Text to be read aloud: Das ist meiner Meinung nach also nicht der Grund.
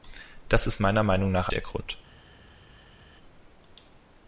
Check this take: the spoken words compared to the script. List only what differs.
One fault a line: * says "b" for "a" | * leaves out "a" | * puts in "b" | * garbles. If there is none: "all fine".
* leaves out "also nicht"